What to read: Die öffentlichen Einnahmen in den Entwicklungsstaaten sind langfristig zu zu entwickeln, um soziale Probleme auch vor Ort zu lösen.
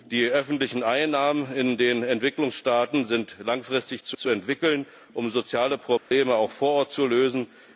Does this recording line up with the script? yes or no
yes